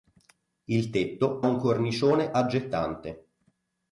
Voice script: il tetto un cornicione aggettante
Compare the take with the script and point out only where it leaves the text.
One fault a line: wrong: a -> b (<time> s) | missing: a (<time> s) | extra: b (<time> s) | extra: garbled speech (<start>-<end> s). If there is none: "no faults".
no faults